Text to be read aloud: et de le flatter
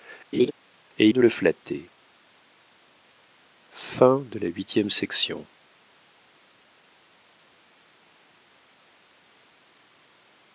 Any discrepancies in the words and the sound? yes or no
yes